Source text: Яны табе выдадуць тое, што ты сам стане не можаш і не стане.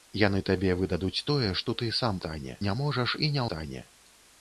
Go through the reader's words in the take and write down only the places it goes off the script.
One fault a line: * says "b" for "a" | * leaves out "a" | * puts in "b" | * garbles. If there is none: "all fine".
all fine